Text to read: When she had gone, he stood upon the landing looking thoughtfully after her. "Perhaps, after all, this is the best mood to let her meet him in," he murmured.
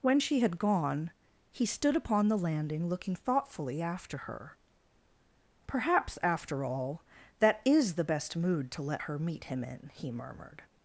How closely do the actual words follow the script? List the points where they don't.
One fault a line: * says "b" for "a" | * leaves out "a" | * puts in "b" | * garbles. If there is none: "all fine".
* says "that" for "this"